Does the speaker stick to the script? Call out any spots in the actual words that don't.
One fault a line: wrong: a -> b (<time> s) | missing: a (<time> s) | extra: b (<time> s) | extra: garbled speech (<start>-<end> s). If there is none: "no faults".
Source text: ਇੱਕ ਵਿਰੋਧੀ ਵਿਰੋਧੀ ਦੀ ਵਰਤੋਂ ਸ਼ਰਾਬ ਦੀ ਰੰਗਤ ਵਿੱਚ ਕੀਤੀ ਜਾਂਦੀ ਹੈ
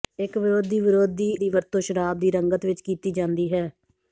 no faults